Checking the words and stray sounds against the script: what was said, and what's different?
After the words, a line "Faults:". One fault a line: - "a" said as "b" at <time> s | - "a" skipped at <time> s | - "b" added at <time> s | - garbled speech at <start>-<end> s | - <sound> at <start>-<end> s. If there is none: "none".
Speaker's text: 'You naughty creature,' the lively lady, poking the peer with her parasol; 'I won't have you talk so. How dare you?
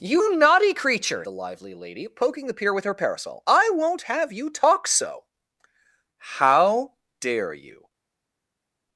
'You naughty creature,' the lively lady, poking the peer with her parasol; 'I won't have you talk so. How dare you?
Faults:
none